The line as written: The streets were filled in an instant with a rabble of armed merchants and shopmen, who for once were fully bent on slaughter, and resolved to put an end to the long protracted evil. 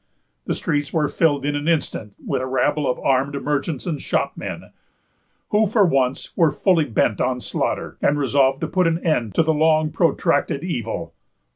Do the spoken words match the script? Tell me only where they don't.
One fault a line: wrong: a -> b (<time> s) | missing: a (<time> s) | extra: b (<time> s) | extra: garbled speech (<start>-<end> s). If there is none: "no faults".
no faults